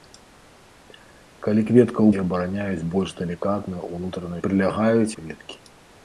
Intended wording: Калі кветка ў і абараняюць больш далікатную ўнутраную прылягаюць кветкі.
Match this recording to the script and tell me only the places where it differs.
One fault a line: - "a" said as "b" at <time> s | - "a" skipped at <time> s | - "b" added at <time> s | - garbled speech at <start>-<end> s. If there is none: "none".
none